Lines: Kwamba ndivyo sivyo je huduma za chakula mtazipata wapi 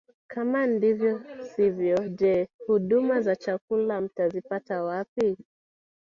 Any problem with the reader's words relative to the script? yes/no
yes